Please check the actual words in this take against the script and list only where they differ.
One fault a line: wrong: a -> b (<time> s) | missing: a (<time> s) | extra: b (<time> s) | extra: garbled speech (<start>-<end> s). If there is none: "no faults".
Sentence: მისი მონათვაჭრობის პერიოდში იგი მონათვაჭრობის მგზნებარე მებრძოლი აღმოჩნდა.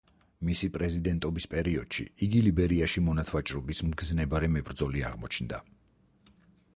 wrong: მონათვაჭრობის -> პრეზიდენტობის (0.8 s)
extra: ლიბერიაში (2.5 s)